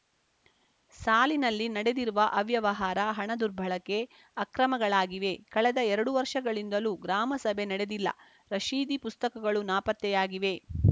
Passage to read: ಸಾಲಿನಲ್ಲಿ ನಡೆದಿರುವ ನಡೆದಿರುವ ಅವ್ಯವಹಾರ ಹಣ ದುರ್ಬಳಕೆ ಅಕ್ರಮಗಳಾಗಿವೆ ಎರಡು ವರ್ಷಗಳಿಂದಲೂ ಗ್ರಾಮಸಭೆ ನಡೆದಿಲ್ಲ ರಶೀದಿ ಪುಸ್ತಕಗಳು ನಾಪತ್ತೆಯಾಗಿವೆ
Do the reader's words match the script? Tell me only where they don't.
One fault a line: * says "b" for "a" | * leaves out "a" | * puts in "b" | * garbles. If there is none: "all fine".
* leaves out "ನಡೆದಿರುವ"
* puts in "ಕಳೆದ"